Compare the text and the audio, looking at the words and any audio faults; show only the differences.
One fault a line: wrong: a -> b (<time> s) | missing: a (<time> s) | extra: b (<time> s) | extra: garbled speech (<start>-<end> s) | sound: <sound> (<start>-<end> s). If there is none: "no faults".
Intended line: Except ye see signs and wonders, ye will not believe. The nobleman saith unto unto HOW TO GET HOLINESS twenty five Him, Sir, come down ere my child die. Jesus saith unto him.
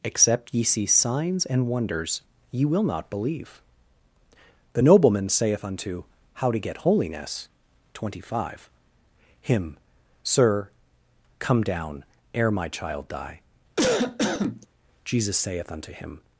missing: unto (6.0 s)
sound: cough (13.8-14.7 s)